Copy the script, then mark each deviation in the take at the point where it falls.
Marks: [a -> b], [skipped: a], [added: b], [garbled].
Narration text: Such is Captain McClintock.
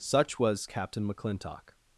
Such [is -> was] Captain McClintock.